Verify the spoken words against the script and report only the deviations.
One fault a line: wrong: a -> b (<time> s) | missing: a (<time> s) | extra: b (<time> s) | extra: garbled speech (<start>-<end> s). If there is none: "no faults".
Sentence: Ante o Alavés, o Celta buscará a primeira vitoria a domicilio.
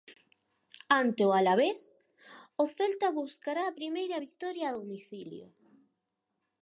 no faults